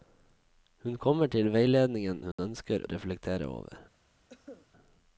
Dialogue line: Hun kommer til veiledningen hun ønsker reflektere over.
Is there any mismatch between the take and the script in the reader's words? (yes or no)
no